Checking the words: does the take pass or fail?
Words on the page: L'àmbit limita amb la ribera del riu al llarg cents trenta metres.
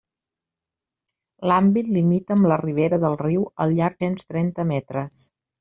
pass